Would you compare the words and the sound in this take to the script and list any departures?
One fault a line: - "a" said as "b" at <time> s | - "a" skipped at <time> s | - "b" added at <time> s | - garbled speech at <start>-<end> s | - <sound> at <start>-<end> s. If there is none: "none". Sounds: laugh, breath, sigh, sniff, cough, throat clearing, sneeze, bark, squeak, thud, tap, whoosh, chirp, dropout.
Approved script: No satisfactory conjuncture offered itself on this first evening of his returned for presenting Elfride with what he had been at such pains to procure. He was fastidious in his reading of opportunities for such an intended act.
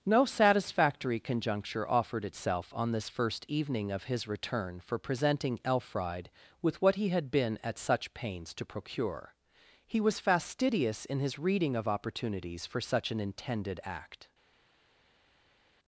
- "returned" said as "return" at 4.3 s